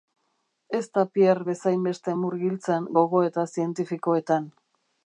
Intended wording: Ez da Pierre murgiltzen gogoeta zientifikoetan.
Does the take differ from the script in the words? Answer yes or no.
yes